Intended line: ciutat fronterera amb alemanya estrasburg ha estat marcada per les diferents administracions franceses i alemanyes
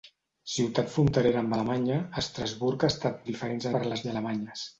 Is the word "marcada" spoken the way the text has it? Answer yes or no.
no